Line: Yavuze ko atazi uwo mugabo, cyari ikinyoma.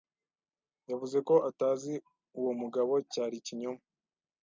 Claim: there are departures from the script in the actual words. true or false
false